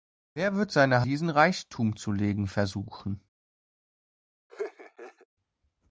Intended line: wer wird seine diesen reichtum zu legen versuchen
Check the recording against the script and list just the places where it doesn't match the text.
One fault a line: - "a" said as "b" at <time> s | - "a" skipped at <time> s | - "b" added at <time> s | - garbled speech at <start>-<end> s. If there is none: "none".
none